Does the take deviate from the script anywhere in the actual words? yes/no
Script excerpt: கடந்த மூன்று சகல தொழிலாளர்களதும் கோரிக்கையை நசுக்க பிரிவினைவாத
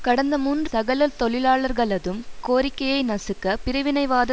no